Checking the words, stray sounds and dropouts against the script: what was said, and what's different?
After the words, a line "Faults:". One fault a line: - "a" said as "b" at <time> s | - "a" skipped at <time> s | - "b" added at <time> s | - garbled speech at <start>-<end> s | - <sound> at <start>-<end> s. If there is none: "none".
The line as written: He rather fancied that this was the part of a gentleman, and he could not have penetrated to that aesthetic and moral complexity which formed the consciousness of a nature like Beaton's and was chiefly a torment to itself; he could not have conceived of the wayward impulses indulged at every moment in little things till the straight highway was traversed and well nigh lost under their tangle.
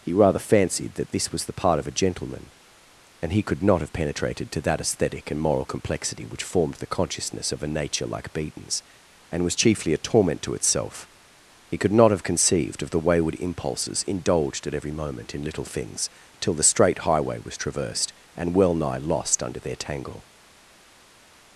He rather fancied that this was the part of a gentleman, and he could not have penetrated to that aesthetic and moral complexity which formed the consciousness of a nature like Beaton's and was chiefly a torment to itself; he could not have conceived of the wayward impulses indulged at every moment in little things till the straight highway was traversed and well nigh lost under their tangle.
Faults:
none